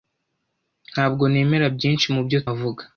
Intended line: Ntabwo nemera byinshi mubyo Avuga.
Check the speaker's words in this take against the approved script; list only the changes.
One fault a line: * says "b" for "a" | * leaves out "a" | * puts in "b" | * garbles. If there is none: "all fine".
all fine